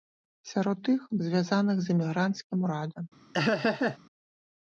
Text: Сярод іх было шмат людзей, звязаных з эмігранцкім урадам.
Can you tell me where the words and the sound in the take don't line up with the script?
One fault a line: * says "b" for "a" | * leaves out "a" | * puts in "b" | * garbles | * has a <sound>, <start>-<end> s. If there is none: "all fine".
* leaves out "было шмат людзей"
* has a laugh, 3.3-4.0 s